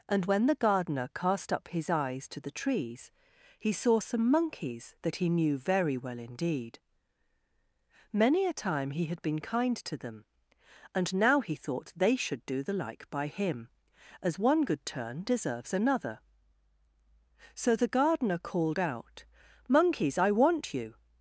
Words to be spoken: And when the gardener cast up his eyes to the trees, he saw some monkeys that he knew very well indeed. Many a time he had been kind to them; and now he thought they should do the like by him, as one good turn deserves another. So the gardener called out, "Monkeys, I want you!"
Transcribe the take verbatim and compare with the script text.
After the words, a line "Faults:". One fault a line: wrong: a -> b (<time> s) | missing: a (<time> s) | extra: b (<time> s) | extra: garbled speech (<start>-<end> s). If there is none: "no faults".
And when the gardener cast up his eyes to the trees, he saw some monkeys that he knew very well indeed. Many a time he had been kind to them; and now he thought they should do the like by him, as one good turn deserves another. So the gardener called out, "Monkeys, I want you!"
Faults:
no faults